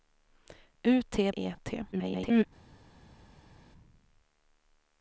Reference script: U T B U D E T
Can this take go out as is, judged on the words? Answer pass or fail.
fail